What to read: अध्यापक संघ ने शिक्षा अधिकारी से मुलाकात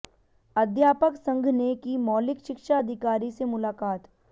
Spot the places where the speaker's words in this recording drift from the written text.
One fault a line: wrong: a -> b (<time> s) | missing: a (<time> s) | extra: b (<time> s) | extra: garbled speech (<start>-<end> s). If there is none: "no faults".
extra: की मौलिक (1.8 s)